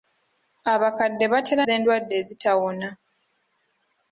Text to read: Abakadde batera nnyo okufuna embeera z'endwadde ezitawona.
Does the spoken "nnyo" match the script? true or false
false